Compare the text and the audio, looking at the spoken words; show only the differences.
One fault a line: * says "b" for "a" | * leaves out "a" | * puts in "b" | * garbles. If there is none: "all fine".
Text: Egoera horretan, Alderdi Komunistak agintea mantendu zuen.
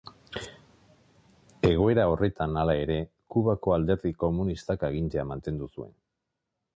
* puts in "hala ere Kubako"